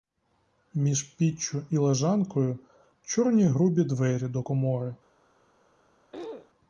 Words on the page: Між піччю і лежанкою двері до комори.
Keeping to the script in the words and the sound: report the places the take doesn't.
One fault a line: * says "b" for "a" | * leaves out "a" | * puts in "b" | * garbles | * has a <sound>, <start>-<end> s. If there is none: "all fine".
* puts in "чорні грубі"
* has a throat clearing, 6.1-6.5 s